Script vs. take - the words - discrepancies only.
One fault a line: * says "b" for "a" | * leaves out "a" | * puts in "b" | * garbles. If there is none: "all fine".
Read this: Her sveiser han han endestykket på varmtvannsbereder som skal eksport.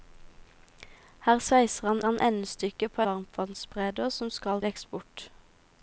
all fine